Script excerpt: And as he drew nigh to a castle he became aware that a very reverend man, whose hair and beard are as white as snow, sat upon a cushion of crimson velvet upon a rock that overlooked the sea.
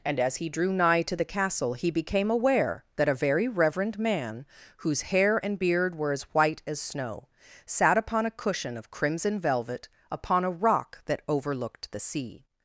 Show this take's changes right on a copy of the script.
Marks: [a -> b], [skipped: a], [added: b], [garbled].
And as he drew nigh to [a -> the] castle he became aware that a very reverend man, whose hair and beard [are -> were] as white as snow, sat upon a cushion of crimson velvet upon a rock that overlooked the sea.